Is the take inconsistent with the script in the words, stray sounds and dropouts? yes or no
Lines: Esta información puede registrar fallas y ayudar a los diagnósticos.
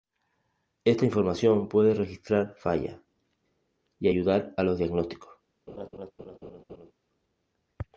yes